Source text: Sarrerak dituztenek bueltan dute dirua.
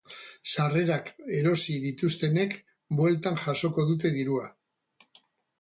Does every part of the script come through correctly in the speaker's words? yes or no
no